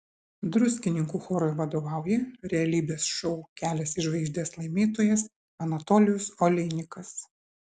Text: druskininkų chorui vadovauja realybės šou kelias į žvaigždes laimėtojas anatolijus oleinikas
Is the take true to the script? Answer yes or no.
yes